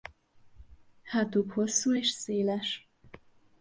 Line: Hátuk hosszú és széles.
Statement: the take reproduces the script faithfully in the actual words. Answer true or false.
true